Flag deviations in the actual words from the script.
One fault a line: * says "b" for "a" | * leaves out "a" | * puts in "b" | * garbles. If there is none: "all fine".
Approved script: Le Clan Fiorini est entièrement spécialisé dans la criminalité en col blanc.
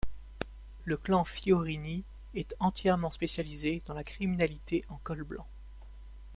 all fine